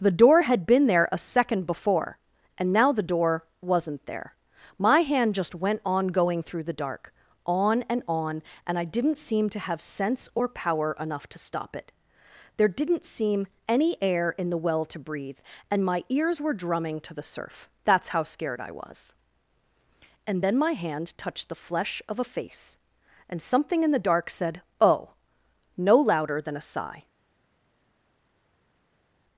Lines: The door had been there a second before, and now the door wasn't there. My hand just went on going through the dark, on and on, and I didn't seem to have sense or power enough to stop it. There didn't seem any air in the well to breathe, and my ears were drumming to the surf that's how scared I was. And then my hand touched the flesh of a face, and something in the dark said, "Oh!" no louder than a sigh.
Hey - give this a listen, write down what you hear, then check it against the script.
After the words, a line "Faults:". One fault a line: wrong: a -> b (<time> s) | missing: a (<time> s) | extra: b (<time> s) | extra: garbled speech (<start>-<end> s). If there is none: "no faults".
The door had been there a second before, and now the door wasn't there. My hand just went on going through the dark, on and on, and I didn't seem to have sense or power enough to stop it. There didn't seem any air in the well to breathe, and my ears were drumming to the surf that's how scared I was. And then my hand touched the flesh of a face, and something in the dark said, "Oh!" no louder than a sigh.
Faults:
no faults